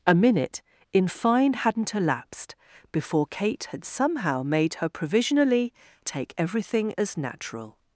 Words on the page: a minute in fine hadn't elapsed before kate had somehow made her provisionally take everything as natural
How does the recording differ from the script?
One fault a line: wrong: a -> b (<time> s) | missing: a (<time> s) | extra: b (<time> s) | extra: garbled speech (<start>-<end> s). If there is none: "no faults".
no faults